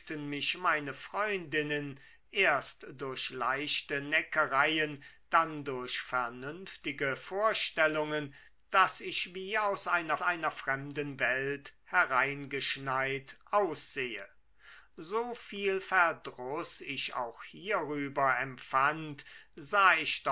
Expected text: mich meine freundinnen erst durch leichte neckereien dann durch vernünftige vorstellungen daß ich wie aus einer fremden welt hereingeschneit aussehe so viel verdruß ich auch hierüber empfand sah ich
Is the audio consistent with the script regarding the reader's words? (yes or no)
no